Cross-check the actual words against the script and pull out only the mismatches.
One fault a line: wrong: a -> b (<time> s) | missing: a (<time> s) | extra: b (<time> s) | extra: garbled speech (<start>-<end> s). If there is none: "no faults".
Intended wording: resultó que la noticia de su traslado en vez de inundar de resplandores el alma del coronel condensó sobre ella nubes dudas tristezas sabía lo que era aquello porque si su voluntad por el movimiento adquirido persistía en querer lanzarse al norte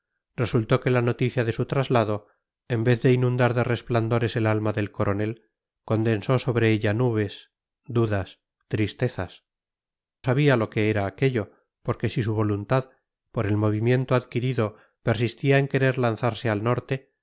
no faults